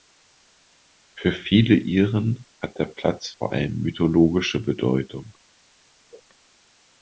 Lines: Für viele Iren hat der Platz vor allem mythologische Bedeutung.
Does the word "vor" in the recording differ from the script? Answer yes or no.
no